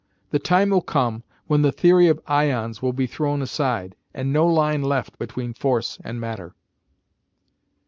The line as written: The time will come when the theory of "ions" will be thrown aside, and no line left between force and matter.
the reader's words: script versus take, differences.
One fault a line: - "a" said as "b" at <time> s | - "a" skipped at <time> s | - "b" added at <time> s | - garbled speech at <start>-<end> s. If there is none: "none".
none